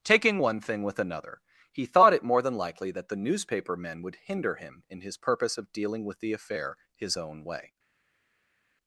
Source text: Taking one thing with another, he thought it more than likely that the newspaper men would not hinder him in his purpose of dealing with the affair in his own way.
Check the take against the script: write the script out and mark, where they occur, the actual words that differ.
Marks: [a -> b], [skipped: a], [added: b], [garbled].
Taking one thing with another, he thought it more than likely that the newspaper men would [skipped: not] hinder him in his purpose of dealing with the affair [skipped: in] his own way.